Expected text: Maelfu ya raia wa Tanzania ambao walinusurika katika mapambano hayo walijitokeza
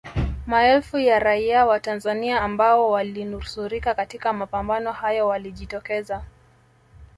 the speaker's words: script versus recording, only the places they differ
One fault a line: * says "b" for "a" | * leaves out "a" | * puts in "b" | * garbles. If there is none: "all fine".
all fine